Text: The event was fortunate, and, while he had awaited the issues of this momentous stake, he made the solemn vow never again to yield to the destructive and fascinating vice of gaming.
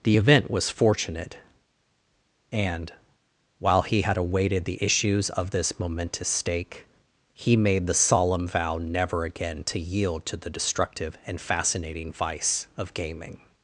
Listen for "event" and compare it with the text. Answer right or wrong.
right